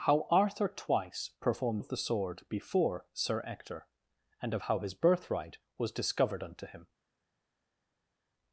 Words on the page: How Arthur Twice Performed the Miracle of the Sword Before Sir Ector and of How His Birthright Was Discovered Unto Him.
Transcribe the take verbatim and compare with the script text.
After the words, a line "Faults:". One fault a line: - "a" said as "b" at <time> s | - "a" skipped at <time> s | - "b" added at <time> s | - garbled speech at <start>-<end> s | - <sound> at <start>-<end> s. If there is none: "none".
How Arthur Twice Performed of the Sword Before Sir Ector and of How His Birthright Was Discovered Unto Him.
Faults:
- "the Miracle" skipped at 1.8 s